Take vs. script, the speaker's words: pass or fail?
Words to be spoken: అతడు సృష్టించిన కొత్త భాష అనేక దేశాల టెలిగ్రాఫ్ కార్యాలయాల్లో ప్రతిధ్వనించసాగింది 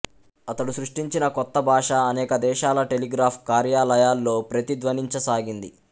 pass